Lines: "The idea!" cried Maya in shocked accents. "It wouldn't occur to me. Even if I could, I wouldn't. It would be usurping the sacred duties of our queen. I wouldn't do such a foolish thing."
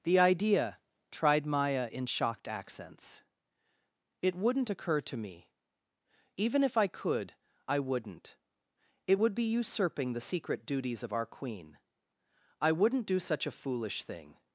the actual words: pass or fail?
fail